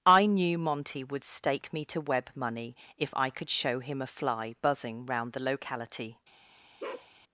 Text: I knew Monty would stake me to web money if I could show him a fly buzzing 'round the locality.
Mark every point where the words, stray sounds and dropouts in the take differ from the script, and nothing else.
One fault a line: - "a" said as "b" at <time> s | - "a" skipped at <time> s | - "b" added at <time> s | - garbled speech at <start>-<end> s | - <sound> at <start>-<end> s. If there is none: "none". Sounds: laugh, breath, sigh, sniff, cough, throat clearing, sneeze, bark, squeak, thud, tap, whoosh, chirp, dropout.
- bark at 6.8-7.1 s